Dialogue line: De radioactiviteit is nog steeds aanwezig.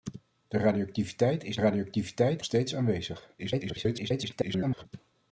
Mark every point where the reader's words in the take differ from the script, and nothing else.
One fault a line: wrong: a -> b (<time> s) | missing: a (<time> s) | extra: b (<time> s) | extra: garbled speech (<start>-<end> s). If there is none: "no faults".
wrong: nog -> radioactiviteit (1.6 s)
extra: garbled speech (3.4-4.9 s)